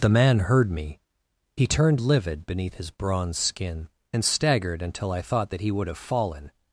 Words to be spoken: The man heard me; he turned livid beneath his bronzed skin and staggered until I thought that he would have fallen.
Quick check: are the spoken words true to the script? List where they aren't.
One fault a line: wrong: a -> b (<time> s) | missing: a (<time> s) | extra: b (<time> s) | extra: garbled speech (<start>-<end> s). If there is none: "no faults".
wrong: bronzed -> bronze (2.9 s)